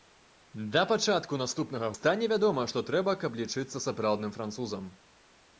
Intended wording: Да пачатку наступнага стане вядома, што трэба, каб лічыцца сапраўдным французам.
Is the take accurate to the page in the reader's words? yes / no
yes